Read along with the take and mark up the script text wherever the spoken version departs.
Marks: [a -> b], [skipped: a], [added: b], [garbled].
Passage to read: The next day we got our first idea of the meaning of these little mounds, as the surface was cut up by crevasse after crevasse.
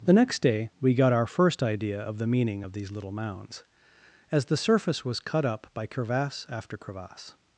The next day we got our first idea of the meaning of these little mounds, as the surface was cut up by crevasse after crevasse.